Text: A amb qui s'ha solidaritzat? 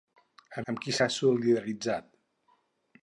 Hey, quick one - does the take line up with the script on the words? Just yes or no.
yes